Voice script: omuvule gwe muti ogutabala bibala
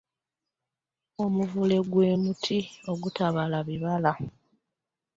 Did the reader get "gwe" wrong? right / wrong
right